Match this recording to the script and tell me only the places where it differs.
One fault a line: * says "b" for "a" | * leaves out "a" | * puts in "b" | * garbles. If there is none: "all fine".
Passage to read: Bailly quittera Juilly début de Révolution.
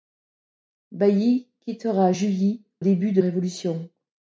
all fine